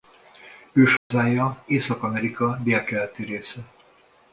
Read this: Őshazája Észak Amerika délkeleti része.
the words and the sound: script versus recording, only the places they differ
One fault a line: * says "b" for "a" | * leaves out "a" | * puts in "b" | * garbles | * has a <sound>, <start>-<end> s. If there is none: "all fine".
* has a dropout, 1.0-1.1 s